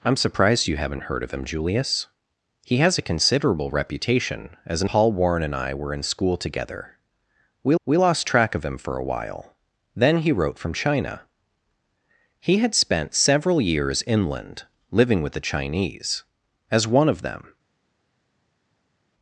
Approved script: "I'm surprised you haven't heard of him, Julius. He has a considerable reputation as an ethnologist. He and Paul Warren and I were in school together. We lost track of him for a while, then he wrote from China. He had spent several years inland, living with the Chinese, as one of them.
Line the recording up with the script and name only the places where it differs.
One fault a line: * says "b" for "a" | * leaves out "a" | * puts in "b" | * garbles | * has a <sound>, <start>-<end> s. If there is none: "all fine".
* leaves out "ethnologist He and"
* puts in "we"